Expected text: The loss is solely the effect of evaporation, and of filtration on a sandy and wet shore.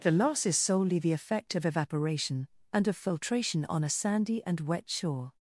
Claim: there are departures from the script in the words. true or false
false